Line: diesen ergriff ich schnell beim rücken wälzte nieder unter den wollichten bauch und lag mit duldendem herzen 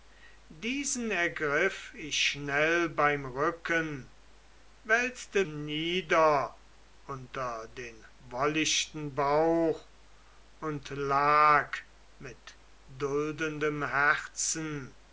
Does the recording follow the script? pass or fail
pass